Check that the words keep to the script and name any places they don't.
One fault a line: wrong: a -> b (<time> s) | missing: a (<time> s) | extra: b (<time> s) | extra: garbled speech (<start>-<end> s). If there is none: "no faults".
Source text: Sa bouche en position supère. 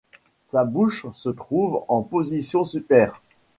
extra: se trouve (1.1 s)